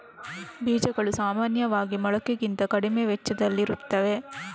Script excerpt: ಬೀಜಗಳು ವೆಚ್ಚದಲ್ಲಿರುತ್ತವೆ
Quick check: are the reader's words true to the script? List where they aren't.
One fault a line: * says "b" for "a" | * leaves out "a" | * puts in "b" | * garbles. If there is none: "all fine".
* puts in "ಸಾಮಾನ್ಯವಾಗಿ ಮೊಳಕೆಗಿಂತ ಕಡಿಮೆ"